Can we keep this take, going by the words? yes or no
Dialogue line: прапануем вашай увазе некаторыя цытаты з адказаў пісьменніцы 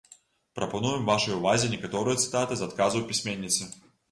yes